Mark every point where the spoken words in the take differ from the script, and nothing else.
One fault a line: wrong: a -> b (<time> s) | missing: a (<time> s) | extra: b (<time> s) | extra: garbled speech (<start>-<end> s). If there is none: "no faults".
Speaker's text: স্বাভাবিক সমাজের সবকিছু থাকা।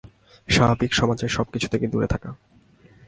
extra: থেকে দূরে (1.7 s)